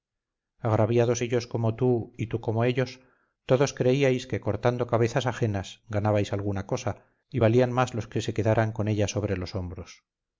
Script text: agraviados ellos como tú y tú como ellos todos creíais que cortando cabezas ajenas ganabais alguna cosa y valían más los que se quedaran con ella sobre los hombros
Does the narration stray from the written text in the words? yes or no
no